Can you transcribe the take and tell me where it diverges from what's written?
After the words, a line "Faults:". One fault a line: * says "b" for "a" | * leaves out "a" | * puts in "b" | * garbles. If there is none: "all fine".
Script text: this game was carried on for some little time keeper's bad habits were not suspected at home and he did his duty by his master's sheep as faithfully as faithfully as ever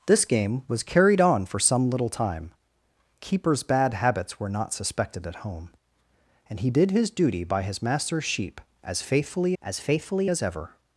this game was carried on for some little time keeper's bad habits were not suspected at home and he did his duty by his master's sheep as faithfully as faithfully as ever
Faults:
all fine